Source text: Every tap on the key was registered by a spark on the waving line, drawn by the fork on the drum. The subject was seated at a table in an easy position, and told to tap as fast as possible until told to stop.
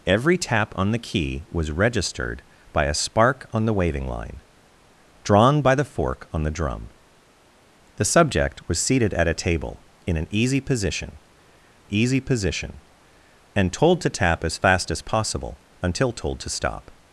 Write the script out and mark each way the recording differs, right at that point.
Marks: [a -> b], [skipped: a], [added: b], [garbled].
Every tap on the key was registered by a spark on the waving line, drawn by the fork on the drum. The subject was seated at a table in an easy position, [added: easy position] and told to tap as fast as possible until told to stop.